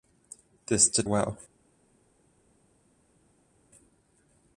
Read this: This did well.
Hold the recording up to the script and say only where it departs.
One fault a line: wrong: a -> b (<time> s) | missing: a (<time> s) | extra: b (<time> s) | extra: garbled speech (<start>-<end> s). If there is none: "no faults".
no faults